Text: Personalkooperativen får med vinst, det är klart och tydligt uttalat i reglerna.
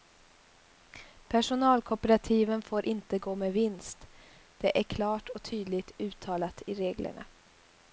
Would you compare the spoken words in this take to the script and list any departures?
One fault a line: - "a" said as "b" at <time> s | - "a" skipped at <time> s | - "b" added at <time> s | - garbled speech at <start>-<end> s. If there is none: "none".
- "inte gå" added at 2.8 s